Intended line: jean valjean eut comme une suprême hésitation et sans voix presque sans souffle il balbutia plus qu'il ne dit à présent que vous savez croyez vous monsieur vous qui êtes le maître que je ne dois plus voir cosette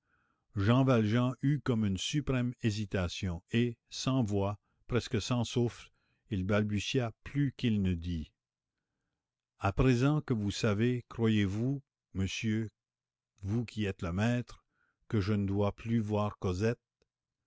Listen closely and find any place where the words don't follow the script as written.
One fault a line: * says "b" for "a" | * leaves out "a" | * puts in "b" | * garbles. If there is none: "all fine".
all fine